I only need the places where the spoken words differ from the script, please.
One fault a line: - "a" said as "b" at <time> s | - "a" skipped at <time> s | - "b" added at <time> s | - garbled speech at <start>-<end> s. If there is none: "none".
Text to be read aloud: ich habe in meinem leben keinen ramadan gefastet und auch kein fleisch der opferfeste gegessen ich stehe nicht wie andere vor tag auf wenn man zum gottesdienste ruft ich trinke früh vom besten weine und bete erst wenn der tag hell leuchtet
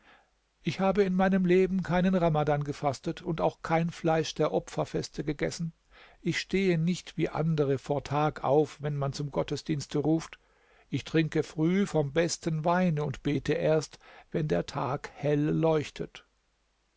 none